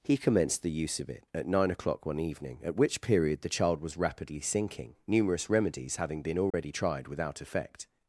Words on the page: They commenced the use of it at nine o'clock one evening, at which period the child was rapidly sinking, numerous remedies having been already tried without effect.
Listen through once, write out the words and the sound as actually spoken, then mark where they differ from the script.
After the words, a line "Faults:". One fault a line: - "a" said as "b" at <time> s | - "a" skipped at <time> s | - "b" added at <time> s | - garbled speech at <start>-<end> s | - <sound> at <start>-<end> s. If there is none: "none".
He commenced the use of it at nine o'clock one evening, at which period the child was rapidly sinking, numerous remedies having been already tried without effect.
Faults:
- "They" said as "He" at 0.0 s
- dropout at 6.5-6.5 s